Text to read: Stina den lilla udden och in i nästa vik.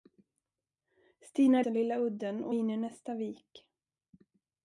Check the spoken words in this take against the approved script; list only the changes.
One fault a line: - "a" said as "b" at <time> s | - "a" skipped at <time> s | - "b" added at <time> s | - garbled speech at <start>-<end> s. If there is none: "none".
none